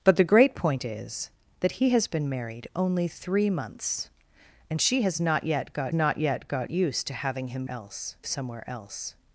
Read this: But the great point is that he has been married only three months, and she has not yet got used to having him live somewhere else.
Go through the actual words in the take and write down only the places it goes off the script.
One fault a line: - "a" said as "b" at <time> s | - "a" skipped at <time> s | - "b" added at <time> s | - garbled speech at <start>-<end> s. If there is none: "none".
- "not yet got" added at 5.9 s
- "live" said as "else" at 7.7 s